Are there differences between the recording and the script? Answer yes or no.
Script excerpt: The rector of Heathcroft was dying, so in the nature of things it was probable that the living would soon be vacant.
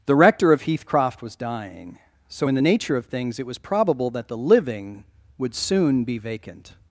no